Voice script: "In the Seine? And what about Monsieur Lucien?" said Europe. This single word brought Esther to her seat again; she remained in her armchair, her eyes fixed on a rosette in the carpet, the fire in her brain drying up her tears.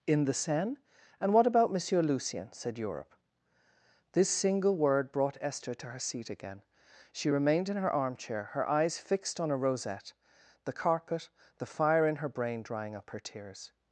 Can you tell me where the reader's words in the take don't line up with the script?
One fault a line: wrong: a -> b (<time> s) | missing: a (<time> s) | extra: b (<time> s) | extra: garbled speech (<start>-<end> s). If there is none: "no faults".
missing: in (10.1 s)